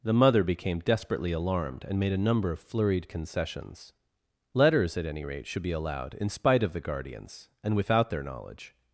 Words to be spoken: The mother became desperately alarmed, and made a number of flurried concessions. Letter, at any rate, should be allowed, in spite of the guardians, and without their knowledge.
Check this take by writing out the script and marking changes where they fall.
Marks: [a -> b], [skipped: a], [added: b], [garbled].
The mother became desperately alarmed, and made a number of flurried concessions. [Letter, -> Letters] at any rate, should be allowed, in spite of the guardians, and without their knowledge.